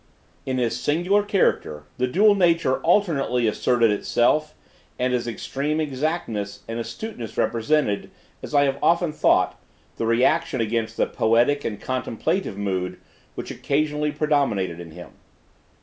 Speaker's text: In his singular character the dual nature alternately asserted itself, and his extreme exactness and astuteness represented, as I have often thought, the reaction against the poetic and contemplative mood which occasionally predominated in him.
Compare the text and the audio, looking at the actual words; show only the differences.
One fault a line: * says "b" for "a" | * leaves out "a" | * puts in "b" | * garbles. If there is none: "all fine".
all fine